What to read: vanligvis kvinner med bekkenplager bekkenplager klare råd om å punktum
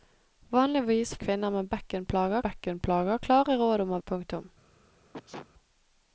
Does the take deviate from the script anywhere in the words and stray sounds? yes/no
yes